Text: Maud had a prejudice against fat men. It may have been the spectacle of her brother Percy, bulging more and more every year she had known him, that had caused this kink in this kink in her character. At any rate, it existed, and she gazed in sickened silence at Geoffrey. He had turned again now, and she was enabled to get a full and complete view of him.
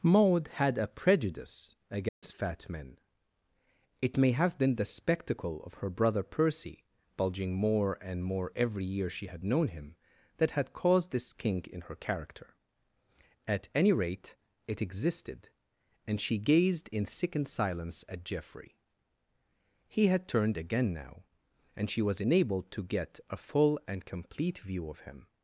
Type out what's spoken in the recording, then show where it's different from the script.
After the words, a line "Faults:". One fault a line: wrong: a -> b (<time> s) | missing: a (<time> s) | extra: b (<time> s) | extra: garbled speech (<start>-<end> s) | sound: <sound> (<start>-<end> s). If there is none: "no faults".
Maud had a prejudice against fat men. It may have been the spectacle of her brother Percy, bulging more and more every year she had known him, that had caused this kink in her character. At any rate, it existed, and she gazed in sickened silence at Geoffrey. He had turned again now, and she was enabled to get a full and complete view of him.
Faults:
sound: dropout (2.1-2.2 s)
missing: this kink in (11.8 s)